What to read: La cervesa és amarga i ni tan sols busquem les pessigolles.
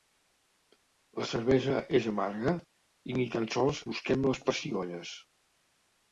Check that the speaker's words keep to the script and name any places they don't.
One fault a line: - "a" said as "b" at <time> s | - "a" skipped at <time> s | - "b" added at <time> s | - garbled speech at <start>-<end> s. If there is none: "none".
none